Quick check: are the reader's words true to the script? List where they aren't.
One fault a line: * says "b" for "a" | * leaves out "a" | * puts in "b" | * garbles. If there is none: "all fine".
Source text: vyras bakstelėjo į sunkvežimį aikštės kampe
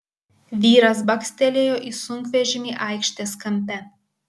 all fine